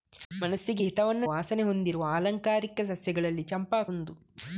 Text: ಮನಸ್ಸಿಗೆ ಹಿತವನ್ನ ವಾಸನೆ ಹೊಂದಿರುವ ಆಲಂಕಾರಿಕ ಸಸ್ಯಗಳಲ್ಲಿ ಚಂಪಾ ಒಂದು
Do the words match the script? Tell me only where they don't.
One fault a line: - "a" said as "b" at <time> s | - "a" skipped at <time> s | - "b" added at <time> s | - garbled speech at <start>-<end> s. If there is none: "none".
none